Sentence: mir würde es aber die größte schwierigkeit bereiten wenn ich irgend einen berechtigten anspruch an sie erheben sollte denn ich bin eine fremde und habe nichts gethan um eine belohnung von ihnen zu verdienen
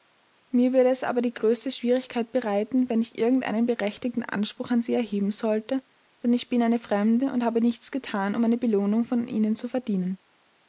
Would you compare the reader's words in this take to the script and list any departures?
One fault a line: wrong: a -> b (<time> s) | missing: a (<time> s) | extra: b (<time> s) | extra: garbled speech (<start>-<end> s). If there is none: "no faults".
no faults